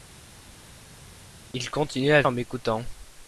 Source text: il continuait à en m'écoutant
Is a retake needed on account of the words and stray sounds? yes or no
no